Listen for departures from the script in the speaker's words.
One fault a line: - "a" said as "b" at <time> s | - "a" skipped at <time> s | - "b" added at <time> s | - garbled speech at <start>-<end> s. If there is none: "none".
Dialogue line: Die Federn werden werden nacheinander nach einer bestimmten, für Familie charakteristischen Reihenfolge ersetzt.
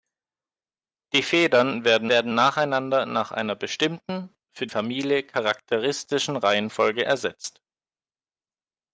none